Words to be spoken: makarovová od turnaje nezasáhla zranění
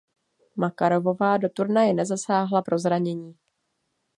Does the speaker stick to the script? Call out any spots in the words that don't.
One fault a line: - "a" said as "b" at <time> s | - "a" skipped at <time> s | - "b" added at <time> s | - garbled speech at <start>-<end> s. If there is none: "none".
- "od" said as "do" at 1.4 s
- "pro" added at 2.6 s